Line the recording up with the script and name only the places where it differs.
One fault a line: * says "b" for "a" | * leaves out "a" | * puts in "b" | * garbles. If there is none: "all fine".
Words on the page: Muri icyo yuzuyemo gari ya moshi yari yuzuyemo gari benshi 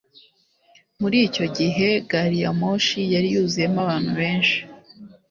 * says "gihe" for "yuzuyemo"
* says "abantu" for "gari"